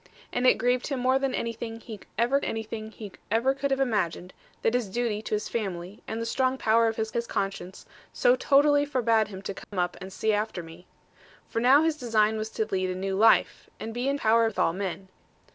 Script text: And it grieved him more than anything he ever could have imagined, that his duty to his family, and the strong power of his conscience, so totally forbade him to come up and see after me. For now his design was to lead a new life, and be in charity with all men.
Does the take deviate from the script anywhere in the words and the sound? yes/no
yes